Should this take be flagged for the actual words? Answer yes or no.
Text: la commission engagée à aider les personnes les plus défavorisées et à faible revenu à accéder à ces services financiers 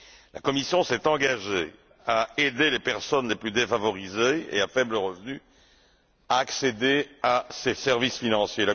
yes